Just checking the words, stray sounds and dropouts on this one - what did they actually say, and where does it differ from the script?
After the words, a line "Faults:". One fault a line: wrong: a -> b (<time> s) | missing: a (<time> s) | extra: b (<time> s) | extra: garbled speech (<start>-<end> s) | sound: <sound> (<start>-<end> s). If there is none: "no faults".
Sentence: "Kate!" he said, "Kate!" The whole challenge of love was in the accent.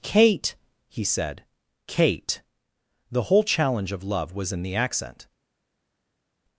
"Kate!" he said, "Kate!" The whole challenge of love was in the accent.
Faults:
no faults